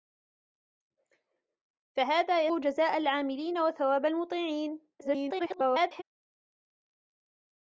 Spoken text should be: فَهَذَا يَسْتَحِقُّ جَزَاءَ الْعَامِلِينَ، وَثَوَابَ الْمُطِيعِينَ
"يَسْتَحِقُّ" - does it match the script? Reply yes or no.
no